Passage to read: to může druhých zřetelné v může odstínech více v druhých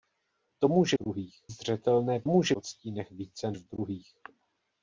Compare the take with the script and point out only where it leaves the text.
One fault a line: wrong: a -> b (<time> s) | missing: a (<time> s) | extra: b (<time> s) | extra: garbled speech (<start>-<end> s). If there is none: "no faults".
no faults